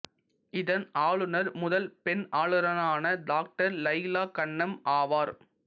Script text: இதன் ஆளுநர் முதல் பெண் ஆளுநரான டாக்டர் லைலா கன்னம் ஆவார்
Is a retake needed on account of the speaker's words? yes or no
no